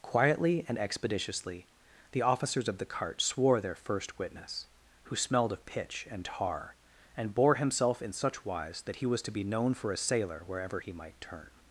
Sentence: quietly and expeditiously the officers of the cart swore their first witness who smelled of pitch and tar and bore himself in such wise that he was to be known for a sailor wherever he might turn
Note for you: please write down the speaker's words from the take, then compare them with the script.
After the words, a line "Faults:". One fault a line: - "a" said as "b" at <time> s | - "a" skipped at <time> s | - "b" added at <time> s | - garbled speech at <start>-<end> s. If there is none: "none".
quietly and expeditiously the officers of the cart swore their first witness who smelled of pitch and tar and bore himself in such wise that he was to be known for a sailor wherever he might turn
Faults:
none